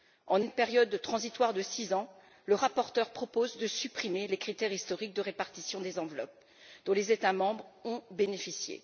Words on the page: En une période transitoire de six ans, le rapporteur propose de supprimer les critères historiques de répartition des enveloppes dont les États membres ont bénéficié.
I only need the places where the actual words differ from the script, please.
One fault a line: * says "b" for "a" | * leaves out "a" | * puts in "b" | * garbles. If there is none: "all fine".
all fine